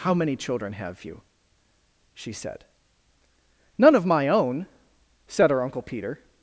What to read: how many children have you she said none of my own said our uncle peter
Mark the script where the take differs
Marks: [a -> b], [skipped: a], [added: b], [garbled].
how many children have you she said none of my own said [our -> her] uncle peter